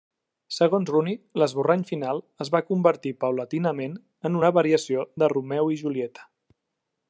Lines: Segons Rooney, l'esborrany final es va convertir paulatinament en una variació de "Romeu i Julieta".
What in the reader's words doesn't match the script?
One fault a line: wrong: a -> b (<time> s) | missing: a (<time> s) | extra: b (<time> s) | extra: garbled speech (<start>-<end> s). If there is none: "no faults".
no faults